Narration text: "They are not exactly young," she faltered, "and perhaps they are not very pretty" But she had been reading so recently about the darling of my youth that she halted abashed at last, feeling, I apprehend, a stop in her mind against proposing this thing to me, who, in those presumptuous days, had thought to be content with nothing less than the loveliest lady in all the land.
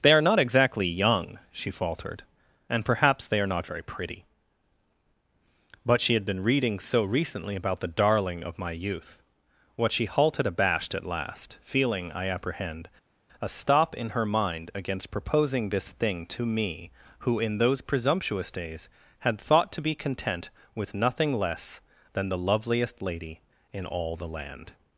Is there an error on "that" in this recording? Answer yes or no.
yes